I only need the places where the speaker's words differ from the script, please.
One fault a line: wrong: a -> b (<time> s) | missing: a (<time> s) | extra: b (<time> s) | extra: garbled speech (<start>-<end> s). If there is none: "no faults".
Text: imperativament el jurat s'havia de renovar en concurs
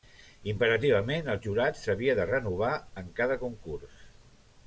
extra: cada (3.2 s)